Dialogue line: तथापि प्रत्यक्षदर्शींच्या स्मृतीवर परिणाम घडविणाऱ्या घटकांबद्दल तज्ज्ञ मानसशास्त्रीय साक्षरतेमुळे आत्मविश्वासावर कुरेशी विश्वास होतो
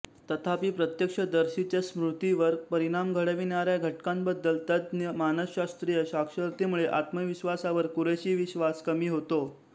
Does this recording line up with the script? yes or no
no